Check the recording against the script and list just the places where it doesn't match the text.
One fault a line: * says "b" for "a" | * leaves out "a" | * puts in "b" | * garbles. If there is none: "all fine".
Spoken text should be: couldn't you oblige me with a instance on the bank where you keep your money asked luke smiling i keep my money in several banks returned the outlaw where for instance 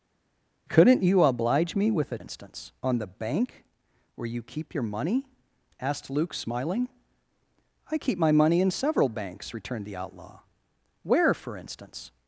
all fine